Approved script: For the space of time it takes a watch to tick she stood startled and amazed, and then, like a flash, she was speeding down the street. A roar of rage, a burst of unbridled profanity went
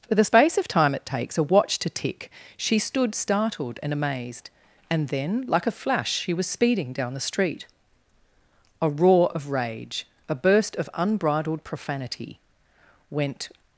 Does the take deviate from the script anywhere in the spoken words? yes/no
no